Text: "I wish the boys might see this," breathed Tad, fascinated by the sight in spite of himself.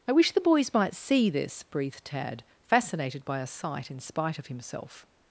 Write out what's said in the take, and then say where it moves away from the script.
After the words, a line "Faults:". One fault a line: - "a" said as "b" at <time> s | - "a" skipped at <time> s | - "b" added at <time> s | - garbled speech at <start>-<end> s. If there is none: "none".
"I wish the boys might see this," breathed Tad, fascinated by a sight in spite of himself.
Faults:
- "the" said as "a" at 3.4 s